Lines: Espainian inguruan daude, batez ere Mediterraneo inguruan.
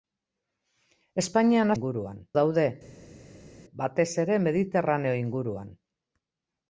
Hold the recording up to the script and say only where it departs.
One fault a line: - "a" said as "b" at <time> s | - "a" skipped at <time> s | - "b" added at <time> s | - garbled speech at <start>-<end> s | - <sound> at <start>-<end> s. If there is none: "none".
none